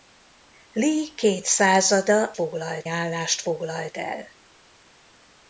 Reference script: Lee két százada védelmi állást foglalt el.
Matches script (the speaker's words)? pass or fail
fail